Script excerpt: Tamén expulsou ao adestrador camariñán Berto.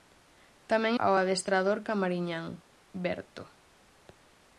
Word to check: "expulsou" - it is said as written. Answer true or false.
false